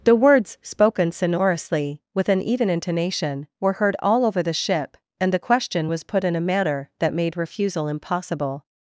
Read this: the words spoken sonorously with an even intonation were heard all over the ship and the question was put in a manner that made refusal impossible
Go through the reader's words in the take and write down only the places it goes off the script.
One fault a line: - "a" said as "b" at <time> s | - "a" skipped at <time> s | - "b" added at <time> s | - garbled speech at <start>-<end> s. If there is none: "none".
none